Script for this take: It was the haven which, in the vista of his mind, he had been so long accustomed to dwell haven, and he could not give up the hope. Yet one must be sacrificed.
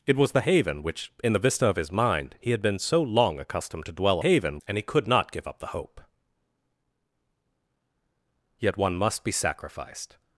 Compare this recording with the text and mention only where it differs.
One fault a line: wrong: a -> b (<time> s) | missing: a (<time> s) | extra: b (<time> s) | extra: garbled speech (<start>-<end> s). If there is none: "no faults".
no faults